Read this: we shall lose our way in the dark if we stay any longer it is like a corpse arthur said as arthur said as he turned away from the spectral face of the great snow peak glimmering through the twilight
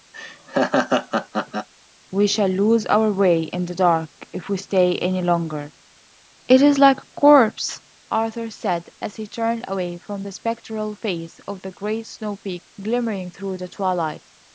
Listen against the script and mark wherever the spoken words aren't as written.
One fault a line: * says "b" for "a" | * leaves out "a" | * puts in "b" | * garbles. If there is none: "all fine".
* leaves out "arthur said as"